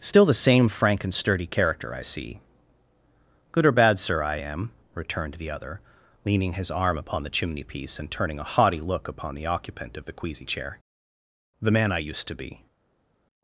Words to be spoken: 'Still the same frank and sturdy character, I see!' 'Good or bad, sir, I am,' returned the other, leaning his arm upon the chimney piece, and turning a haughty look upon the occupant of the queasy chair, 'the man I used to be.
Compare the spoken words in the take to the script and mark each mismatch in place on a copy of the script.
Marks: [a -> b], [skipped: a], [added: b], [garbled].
'Still the same frank and sturdy character, I see!' 'Good or bad, sir, I am,' returned the other, leaning his arm upon the chimney piece, and turning a haughty look upon the occupant of the queasy chair, 'the man I used to be.